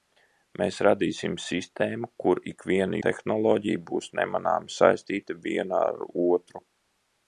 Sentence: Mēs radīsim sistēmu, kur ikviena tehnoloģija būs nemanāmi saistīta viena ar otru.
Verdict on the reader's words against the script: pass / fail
pass